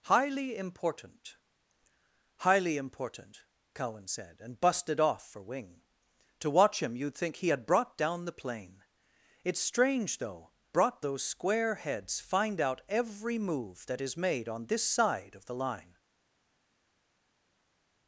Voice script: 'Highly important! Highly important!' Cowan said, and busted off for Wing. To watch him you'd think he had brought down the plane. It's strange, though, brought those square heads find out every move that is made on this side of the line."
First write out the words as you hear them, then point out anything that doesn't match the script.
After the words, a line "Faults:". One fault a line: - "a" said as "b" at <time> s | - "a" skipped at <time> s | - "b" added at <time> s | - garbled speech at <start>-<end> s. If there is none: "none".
'Highly important! Highly important!' Cowan said, and busted off for Wing. To watch him you'd think he had brought down the plane. It's strange, though, brought those square heads find out every move that is made on this side of the line."
Faults:
none